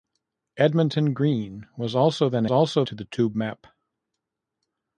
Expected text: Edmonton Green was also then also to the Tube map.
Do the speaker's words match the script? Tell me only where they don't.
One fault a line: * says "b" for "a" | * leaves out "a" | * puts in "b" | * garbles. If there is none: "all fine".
all fine